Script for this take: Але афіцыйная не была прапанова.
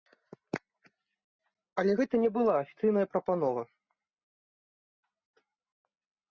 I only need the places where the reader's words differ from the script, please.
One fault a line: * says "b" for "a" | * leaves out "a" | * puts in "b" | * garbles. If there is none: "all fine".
* says "гэта" for "афіцыйная"
* puts in "афіцыйная"